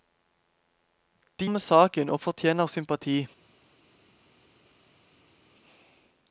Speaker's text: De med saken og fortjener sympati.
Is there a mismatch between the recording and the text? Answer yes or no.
no